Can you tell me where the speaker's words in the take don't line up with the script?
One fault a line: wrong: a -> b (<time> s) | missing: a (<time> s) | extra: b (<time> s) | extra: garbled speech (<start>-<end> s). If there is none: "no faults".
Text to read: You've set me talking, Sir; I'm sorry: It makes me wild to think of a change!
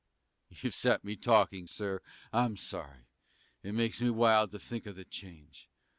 wrong: a -> the (4.9 s)